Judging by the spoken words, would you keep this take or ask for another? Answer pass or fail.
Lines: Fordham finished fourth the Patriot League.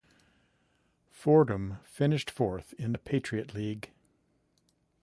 fail